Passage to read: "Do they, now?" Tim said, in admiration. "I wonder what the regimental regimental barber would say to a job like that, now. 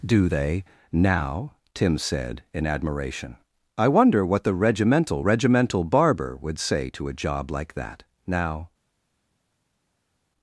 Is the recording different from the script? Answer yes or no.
no